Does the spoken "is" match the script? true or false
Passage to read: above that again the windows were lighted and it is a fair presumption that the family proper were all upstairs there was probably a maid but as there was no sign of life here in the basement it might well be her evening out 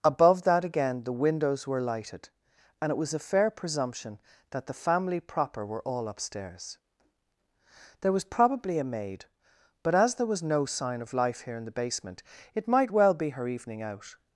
false